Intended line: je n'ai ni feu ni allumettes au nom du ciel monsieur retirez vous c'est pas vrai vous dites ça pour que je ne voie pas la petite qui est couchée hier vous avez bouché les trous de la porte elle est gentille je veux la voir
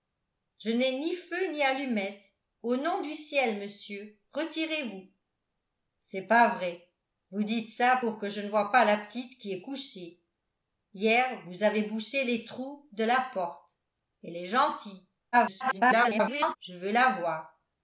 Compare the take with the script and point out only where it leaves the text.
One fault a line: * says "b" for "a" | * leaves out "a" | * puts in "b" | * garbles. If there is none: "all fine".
* garbles